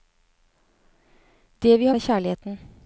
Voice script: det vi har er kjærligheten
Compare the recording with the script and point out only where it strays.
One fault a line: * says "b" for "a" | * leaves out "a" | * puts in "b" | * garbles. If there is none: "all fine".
all fine